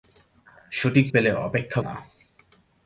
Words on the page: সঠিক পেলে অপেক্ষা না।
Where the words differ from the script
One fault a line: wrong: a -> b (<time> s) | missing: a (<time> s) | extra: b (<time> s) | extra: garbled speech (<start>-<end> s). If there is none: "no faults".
no faults